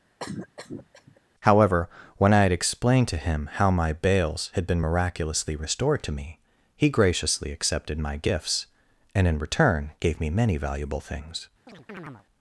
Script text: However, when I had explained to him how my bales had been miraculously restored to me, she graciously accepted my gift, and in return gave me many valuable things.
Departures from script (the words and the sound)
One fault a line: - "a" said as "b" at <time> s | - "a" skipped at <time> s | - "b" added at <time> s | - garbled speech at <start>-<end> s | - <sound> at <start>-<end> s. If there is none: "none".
- cough at 0.2-1.2 s
- "she" said as "he" at 6.7 s
- "gift" said as "gifts" at 8.2 s
- chirp at 11.7-12.2 s